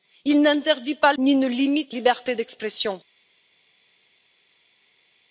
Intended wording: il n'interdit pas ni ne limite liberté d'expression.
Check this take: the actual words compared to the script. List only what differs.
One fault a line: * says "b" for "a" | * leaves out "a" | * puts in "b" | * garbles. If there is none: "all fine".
all fine